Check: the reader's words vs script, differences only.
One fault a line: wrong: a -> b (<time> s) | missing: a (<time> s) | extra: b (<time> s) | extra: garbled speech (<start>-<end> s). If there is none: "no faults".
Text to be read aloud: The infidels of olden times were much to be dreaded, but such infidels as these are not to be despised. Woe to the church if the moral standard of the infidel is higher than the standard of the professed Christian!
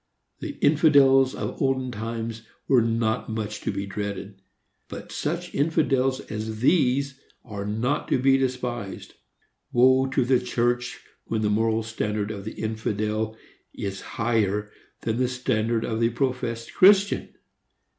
extra: not (2.8 s)
wrong: if -> when (11.2 s)